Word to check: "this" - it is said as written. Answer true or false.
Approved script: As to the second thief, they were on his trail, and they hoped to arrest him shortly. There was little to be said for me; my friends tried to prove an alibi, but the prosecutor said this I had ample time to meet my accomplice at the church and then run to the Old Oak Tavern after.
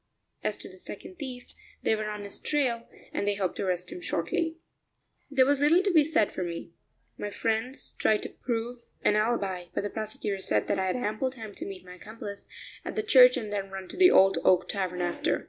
false